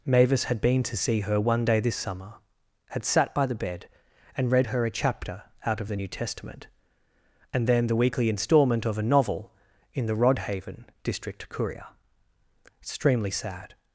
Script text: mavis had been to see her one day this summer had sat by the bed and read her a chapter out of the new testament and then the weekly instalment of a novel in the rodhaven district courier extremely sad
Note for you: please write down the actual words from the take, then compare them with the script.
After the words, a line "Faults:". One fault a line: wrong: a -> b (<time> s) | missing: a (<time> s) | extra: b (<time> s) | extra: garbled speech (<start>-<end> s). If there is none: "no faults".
mavis had been to see her one day this summer had sat by the bed and read her a chapter out of the new testament and then the weekly instalment of a novel in the rodhaven district courier extremely sad
Faults:
no faults